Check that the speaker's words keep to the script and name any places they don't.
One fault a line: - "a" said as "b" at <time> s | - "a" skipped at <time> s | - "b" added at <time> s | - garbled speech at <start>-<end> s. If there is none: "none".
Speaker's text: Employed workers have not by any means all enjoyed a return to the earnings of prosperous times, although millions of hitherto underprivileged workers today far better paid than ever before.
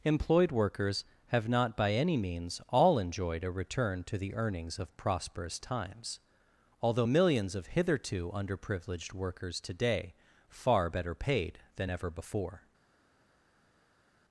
none